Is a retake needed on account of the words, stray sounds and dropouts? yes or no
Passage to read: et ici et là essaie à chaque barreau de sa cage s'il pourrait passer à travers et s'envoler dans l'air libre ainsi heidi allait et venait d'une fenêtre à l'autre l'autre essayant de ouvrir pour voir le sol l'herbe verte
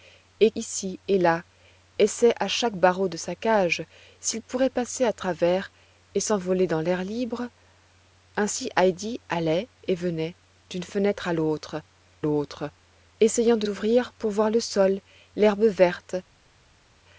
no